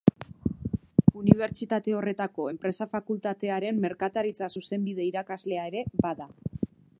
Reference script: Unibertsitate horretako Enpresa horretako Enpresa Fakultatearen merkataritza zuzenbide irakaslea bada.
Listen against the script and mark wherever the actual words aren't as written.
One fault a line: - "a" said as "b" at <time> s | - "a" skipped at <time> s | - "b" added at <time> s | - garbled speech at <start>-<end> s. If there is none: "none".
- "horretako Enpresa" skipped at 2.9 s
- "ere" added at 5.7 s